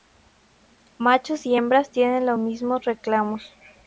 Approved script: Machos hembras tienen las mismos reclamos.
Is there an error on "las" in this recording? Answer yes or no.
yes